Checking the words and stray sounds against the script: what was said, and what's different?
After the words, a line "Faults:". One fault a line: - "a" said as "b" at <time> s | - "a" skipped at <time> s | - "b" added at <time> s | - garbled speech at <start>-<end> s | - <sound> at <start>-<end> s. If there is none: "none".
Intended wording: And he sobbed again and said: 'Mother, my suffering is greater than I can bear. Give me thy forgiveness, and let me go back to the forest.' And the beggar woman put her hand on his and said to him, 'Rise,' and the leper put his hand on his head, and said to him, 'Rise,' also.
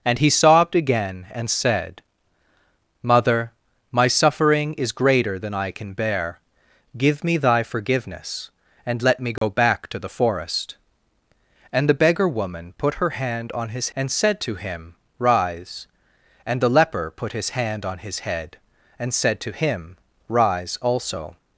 And he sobbed again and said: 'Mother, my suffering is greater than I can bear. Give me thy forgiveness, and let me go back to the forest.' And the beggar woman put her hand on his and said to him, 'Rise,' and the leper put his hand on his head, and said to him, 'Rise,' also.
Faults:
- dropout at 9.4-9.4 s